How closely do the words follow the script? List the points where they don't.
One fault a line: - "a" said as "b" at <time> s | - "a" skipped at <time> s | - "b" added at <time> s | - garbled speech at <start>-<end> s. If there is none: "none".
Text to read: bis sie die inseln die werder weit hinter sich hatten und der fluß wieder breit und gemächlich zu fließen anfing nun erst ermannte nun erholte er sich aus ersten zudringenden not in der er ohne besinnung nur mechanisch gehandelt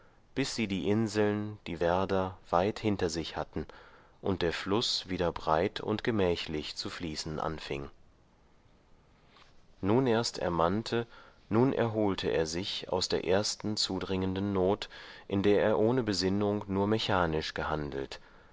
- "der" added at 13.1 s